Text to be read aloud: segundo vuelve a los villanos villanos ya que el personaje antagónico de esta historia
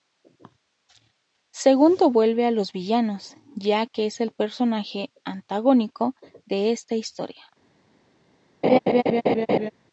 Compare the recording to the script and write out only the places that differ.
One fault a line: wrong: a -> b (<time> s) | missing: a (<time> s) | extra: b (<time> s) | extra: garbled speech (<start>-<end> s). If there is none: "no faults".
missing: villanos (3.4 s)
extra: es (4.0 s)